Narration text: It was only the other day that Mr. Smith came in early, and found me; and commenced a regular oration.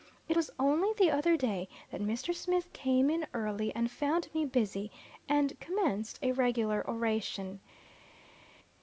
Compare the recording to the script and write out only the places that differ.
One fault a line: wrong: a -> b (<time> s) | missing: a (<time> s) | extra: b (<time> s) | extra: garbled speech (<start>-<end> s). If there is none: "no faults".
extra: busy (4.4 s)